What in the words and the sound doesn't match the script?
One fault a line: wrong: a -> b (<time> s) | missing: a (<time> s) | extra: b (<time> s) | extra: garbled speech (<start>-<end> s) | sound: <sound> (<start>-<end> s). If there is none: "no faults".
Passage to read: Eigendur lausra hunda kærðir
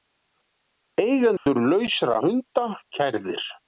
sound: dropout (1.4-1.5 s)